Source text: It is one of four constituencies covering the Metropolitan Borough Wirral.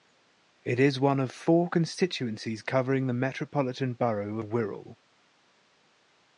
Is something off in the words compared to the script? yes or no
no